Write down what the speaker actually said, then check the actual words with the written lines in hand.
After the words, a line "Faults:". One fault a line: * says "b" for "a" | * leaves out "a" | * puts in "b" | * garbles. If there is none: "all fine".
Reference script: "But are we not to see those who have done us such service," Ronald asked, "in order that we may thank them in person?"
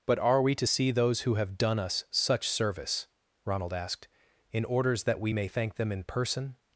"But are we to see those who have done us such service," Ronald asked, "in orders that we may thank them in person?"
Faults:
* leaves out "not"
* says "orders" for "order"